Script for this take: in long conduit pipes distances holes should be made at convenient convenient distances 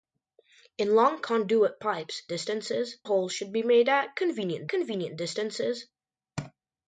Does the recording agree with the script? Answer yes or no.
yes